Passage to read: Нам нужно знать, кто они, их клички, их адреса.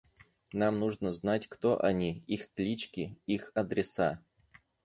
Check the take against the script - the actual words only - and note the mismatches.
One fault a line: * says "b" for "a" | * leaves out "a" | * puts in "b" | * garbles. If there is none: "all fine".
all fine